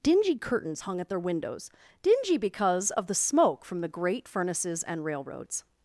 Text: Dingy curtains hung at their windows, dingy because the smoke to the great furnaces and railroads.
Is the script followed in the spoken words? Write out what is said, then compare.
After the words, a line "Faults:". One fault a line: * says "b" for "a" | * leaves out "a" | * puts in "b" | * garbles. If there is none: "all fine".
Dingy curtains hung at their windows, dingy because of the smoke from the great furnaces and railroads.
Faults:
* puts in "of"
* says "from" for "to"